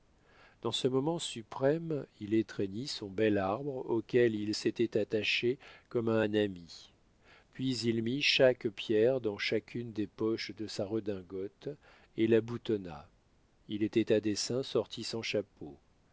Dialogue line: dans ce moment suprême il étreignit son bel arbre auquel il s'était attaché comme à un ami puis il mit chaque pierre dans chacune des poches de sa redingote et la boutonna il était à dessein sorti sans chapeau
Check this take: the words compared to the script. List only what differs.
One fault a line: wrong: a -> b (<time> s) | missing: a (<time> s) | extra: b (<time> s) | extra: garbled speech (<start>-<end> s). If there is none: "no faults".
no faults